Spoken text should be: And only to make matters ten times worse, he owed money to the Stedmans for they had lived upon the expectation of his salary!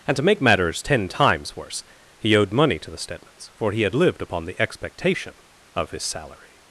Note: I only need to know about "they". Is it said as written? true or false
false